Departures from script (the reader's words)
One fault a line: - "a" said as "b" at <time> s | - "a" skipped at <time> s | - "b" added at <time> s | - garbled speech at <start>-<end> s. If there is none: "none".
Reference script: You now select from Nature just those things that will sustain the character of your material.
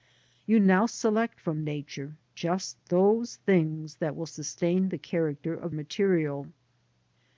- "your" skipped at 5.8 s